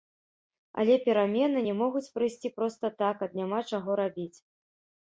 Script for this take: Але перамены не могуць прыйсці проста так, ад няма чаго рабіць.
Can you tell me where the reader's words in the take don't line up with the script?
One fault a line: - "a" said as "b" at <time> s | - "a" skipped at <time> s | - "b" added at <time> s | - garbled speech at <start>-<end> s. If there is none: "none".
none